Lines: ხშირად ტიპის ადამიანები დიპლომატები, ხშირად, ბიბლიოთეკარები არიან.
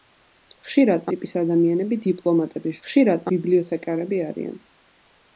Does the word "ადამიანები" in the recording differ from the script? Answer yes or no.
no